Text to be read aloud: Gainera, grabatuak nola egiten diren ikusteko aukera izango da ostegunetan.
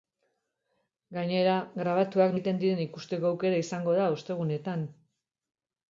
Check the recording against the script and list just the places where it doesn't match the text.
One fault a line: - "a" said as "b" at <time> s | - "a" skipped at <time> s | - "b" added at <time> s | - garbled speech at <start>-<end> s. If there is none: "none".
- "nola" skipped at 2.3 s